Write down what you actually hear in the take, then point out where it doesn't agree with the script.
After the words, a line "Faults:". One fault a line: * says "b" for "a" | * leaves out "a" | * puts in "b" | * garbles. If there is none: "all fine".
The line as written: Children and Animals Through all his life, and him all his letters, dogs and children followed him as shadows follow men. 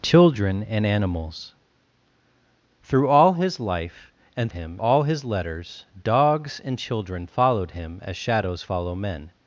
Children and Animals Through all his life, and him all his letters, dogs and children followed him as shadows follow men.
Faults:
all fine